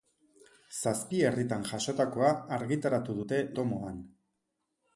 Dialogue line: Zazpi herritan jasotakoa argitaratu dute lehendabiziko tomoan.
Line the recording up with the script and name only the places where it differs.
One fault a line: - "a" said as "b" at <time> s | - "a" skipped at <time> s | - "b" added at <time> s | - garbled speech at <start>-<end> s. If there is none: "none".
- "lehendabiziko" skipped at 3.4 s